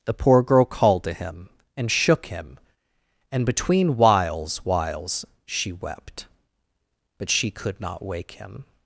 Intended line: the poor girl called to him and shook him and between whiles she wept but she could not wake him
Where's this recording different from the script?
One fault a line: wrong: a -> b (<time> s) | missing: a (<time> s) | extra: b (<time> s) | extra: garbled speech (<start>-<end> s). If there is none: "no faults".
extra: whiles (4.7 s)